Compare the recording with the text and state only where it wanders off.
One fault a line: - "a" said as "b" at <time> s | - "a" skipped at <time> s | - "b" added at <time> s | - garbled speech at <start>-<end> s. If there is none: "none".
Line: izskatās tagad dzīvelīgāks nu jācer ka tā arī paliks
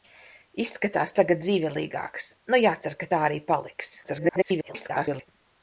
- garbled speech at 4.0-5.3 s